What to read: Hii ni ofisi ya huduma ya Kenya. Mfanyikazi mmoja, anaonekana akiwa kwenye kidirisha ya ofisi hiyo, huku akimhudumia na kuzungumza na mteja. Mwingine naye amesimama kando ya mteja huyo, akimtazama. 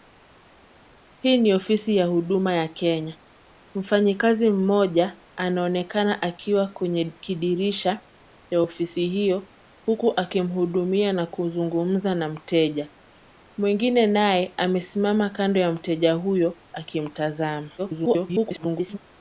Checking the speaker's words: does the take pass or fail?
fail